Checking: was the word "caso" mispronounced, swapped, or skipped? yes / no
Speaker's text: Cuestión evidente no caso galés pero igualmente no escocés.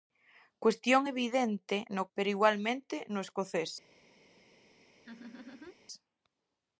yes